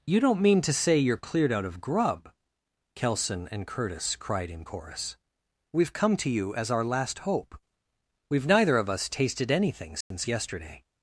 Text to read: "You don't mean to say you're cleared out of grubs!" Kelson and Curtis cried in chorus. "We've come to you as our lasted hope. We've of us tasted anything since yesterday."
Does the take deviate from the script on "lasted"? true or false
true